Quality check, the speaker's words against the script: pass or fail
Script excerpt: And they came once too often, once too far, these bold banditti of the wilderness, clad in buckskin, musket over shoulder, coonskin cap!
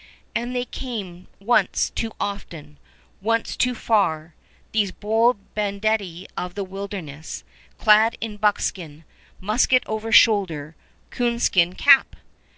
pass